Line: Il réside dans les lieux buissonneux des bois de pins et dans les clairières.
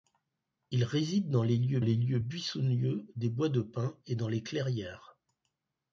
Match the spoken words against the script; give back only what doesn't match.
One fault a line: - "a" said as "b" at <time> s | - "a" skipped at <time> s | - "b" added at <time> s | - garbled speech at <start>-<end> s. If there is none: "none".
- "les lieux" added at 1.8 s